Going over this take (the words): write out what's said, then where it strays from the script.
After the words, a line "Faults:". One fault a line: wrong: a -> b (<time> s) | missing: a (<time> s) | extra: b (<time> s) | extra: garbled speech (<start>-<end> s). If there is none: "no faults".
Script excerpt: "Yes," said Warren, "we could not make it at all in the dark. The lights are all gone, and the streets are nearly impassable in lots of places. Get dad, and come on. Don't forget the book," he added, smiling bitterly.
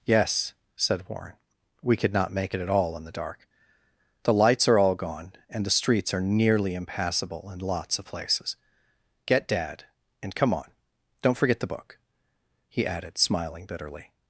"Yes," said Warren, "we could not make it at all in the dark. The lights are all gone, and the streets are nearly impassable in lots of places. Get dad, and come on. Don't forget the book," he added, smiling bitterly.
Faults:
no faults